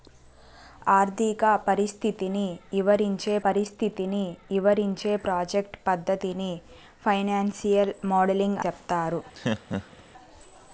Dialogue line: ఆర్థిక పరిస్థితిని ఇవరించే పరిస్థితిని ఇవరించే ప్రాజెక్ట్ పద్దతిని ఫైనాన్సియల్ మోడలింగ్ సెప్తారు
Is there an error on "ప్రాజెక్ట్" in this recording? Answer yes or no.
no